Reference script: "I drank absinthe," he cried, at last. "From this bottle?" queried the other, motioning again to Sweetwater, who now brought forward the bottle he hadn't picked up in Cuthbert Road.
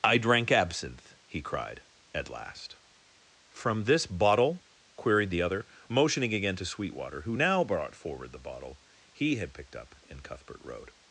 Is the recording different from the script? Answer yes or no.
yes